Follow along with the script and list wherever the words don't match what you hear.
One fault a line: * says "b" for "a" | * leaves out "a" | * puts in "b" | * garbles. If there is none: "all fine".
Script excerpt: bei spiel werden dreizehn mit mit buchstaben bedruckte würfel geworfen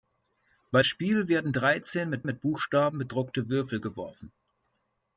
all fine